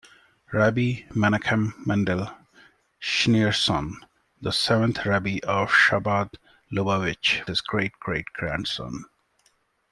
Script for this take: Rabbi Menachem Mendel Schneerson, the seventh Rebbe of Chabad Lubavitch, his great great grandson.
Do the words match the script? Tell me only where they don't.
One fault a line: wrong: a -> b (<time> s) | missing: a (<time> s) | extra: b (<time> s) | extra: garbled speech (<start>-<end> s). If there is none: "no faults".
no faults